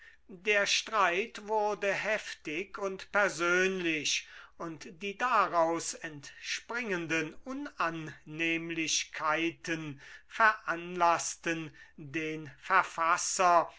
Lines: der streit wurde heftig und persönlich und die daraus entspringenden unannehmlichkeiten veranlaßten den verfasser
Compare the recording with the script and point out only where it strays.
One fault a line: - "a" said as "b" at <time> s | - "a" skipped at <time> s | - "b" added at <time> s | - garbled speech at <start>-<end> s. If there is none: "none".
none